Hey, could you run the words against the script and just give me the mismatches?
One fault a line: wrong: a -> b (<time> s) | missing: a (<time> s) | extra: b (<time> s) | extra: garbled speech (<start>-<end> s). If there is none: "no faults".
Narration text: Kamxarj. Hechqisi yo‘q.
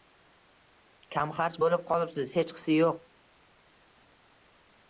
extra: bo‘lib qolibsiz (1.6 s)